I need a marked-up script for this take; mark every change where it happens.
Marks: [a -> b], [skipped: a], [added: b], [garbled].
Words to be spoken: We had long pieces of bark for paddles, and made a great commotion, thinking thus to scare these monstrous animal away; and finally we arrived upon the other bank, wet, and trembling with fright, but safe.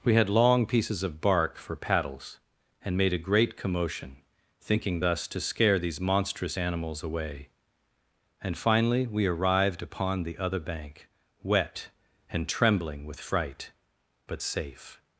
We had long pieces of bark for paddles, and made a great commotion, thinking thus to scare these monstrous [animal -> animals] away; and finally we arrived upon the other bank, wet, and trembling with fright, but safe.